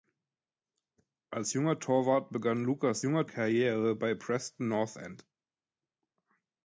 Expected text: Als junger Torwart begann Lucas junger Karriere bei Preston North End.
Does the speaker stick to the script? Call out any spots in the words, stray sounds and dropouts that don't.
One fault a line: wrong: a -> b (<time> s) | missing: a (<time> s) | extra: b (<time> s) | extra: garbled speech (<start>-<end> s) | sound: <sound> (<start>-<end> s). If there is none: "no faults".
no faults